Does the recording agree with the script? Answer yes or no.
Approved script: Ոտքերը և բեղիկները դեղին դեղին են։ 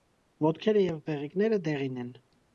no